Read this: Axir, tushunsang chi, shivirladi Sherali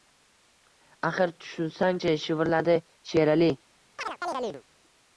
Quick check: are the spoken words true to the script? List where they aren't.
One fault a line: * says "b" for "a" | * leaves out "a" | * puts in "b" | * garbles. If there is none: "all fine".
all fine